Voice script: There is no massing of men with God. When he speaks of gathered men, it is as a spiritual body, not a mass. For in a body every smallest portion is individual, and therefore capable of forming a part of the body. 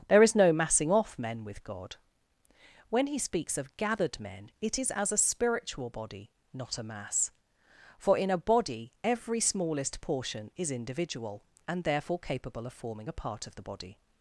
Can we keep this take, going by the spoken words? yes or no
no